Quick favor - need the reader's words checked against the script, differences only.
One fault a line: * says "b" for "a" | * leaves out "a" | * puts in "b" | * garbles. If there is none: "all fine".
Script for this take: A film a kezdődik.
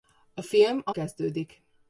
all fine